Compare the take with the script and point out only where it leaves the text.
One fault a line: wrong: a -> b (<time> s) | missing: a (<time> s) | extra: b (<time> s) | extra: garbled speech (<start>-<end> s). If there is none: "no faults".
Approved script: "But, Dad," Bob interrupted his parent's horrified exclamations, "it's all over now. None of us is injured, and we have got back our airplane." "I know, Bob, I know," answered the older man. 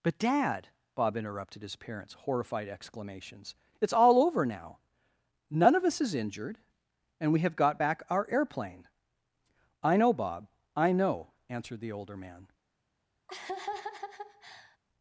no faults